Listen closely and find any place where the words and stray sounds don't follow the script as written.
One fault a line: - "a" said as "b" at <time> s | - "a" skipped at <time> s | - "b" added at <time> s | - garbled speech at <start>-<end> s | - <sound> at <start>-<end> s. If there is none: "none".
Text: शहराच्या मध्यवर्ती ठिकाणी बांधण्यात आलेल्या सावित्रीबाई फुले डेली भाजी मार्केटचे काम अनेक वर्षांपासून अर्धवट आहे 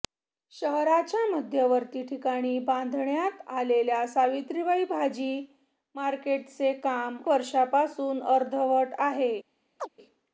- "फुले डेली" skipped at 4.8 s
- "अनेक" skipped at 7.2 s
- chirp at 9.8-9.9 s